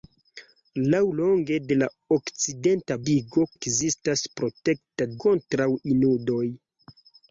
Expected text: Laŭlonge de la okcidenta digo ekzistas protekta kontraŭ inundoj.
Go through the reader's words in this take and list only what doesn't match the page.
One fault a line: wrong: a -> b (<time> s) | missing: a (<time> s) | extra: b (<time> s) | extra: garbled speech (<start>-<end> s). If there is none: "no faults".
no faults